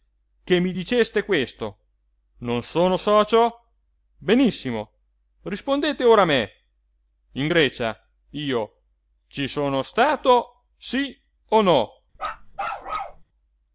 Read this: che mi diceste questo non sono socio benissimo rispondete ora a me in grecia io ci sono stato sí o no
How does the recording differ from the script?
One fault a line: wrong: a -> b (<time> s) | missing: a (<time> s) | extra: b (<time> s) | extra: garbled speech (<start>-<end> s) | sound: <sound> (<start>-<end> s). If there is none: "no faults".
sound: bark (12.1-13.2 s)